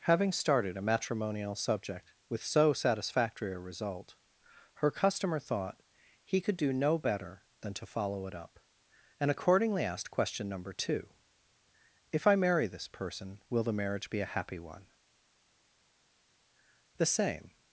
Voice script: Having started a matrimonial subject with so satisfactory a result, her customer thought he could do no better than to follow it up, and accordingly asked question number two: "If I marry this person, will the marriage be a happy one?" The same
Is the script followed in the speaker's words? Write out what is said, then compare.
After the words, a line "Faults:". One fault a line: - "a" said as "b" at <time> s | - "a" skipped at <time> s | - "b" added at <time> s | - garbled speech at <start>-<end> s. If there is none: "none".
Having started a matrimonial subject with so satisfactory a result, her customer thought he could do no better than to follow it up, and accordingly asked question number two: "If I marry this person, will the marriage be a happy one?" The same
Faults:
none